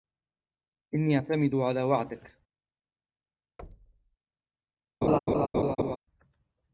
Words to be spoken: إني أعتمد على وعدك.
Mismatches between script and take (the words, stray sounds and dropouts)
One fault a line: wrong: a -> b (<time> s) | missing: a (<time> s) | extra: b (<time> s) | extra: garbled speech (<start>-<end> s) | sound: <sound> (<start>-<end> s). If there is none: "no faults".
sound: thud (3.6-4.2 s)
sound: laugh (5.0-6.0 s)